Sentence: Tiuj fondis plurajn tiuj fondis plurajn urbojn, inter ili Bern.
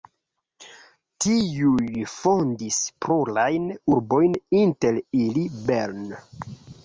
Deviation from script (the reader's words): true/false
true